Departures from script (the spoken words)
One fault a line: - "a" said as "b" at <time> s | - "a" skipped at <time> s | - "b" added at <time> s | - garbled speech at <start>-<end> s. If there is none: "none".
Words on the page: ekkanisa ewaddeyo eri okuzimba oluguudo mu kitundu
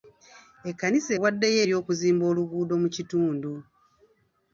none